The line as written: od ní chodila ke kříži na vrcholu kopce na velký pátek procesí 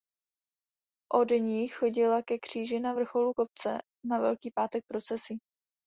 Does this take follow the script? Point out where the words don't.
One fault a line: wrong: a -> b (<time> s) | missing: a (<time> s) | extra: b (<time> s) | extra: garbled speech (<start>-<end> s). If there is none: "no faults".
no faults